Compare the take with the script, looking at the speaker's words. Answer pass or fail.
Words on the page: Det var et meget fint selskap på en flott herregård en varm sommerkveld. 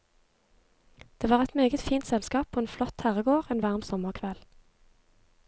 pass